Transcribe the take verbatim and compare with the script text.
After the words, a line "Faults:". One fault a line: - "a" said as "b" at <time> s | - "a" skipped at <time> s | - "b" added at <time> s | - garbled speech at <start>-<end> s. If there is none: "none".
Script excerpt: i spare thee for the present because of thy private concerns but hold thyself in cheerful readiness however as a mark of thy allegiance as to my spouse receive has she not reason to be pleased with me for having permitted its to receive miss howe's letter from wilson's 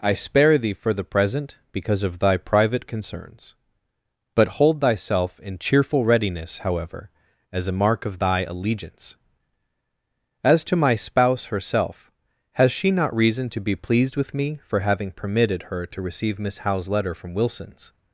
i spare thee for the present because of thy private concerns but hold thyself in cheerful readiness however as a mark of thy allegiance as to my spouse herself has she not reason to be pleased with me for having permitted her to receive miss howe's letter from wilson's
Faults:
- "receive" said as "herself" at 11.4 s
- "its" said as "her" at 15.6 s